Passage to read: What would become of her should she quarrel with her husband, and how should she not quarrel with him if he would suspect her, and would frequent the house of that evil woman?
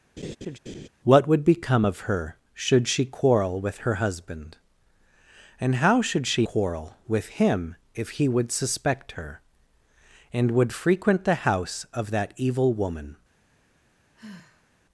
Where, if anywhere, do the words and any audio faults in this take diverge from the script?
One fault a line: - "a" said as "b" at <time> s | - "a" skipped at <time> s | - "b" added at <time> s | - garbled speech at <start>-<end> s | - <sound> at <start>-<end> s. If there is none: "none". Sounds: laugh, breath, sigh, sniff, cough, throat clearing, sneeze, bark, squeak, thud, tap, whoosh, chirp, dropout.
- laugh at 0.2-0.9 s
- "not" skipped at 6.5 s
- sigh at 14.1-14.7 s